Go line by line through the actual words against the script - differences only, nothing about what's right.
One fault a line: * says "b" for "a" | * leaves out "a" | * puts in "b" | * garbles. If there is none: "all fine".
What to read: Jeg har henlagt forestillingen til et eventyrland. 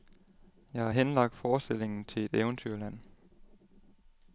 all fine